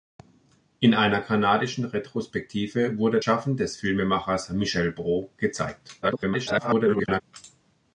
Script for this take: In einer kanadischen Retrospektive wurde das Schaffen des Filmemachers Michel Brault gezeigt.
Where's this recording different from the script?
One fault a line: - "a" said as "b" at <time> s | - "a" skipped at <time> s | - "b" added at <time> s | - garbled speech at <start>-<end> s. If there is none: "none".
- "das" skipped at 3.2 s
- garbled speech at 6.0-7.2 s